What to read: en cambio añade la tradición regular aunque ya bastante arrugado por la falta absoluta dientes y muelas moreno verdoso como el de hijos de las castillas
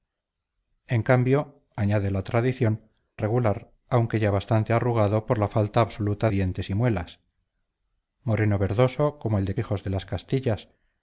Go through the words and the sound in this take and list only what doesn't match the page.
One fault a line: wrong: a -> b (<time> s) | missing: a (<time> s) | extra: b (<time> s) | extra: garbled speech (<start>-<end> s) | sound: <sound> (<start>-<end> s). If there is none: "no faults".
no faults